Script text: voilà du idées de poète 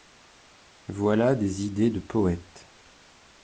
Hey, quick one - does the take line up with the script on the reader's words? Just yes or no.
no